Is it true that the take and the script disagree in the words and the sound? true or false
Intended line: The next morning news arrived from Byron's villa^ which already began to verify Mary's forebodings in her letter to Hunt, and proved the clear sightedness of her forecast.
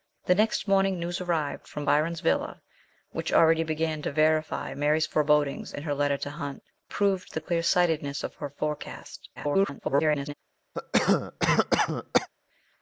true